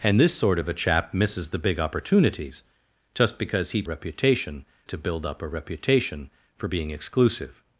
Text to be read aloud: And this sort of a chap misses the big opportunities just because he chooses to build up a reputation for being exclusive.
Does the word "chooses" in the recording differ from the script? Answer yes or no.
yes